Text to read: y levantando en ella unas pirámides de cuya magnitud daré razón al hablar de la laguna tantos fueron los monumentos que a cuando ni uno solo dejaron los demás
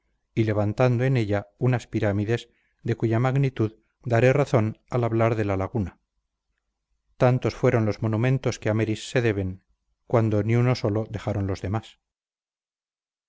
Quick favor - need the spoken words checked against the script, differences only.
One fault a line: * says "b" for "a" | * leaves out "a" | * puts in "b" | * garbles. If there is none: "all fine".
* puts in "meris se deben"